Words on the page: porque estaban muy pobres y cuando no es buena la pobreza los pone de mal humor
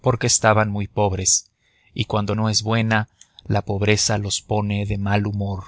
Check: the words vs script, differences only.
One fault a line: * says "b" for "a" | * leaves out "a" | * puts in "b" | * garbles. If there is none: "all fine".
all fine